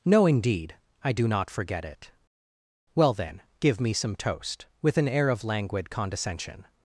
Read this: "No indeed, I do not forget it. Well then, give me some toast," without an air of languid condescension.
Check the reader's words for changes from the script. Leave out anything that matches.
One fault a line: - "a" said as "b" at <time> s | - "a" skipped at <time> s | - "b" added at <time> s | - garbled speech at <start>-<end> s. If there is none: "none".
- "without" said as "with" at 4.8 s